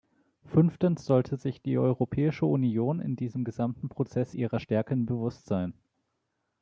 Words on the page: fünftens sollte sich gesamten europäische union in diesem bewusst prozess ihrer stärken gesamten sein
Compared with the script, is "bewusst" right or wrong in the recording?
wrong